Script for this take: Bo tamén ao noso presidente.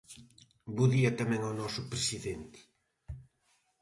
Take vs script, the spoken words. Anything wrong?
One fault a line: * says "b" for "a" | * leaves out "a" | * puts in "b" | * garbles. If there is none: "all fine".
* puts in "día"